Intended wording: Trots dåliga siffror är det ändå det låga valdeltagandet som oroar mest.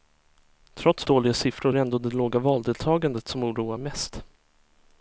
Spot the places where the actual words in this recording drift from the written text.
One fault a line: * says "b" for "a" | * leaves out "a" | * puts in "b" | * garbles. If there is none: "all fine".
all fine